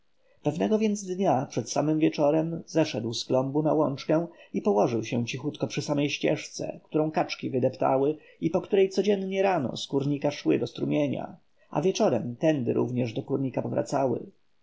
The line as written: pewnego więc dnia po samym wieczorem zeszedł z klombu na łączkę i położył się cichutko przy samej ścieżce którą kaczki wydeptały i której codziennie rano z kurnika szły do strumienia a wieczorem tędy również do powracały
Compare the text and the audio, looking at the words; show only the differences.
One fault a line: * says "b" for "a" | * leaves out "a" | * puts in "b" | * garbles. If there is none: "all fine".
* says "przed" for "po"
* puts in "po"
* puts in "kurnika"